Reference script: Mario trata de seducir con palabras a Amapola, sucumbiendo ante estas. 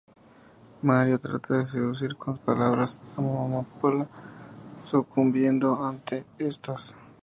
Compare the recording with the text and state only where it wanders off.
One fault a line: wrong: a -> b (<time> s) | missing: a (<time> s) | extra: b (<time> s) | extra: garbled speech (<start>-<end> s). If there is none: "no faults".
no faults